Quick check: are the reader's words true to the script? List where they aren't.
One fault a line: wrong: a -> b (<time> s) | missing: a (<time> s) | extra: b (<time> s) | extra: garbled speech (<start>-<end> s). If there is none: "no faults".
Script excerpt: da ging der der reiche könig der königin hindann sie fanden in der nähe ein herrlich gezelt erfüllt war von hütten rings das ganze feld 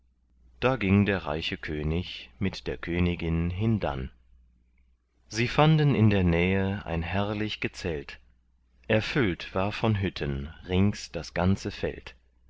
missing: der (1.3 s)
extra: mit (2.4 s)